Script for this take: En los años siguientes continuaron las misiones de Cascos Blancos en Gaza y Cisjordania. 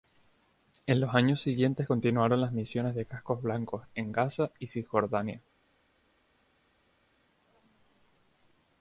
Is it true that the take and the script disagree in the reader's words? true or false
false